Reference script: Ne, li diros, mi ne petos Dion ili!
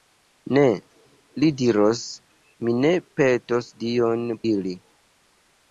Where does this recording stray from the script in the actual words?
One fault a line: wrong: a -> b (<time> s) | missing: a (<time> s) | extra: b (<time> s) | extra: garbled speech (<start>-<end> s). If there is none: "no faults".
no faults